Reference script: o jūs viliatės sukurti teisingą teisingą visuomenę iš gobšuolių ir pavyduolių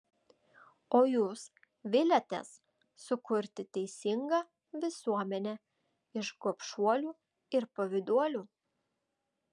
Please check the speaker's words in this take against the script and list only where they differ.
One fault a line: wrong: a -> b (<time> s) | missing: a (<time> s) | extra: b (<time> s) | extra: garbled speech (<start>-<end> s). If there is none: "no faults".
missing: teisingą (4.4 s)